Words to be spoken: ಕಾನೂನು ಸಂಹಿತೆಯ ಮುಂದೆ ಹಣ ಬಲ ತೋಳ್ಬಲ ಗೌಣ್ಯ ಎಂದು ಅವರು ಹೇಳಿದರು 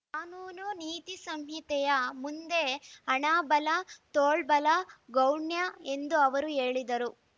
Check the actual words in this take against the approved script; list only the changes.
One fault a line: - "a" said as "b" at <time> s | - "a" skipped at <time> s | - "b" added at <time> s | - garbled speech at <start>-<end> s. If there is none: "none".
- "ನೀತಿ" added at 0.8 s